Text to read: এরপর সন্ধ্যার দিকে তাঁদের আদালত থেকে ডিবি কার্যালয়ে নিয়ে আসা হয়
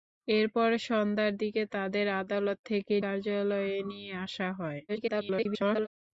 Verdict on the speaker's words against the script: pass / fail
fail